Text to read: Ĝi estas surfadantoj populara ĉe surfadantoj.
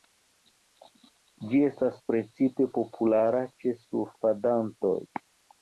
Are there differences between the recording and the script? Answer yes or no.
yes